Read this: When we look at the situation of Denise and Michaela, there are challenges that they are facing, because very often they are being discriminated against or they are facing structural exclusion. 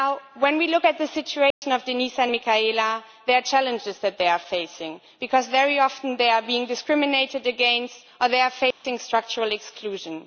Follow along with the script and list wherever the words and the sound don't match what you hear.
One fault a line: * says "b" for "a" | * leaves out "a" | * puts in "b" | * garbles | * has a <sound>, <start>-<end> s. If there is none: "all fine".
* has a dropout, 1.5-1.6 s
* has a dropout, 8.7-8.8 s